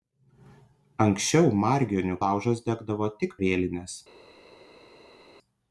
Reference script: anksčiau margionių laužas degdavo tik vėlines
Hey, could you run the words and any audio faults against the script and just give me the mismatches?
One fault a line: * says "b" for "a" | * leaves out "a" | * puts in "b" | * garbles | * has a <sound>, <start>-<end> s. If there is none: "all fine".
all fine